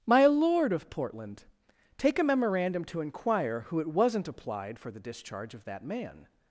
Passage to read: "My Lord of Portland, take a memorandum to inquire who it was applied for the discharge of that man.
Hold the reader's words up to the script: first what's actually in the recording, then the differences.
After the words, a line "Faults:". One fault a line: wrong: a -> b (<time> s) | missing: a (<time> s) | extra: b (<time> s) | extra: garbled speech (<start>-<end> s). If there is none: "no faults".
"My Lord of Portland, take a memorandum to inquire who it wasn't applied for the discharge of that man.
Faults:
wrong: was -> wasn't (3.9 s)